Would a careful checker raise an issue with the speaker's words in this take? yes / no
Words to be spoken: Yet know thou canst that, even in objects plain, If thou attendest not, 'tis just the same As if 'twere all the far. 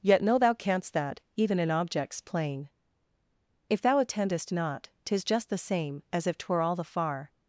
no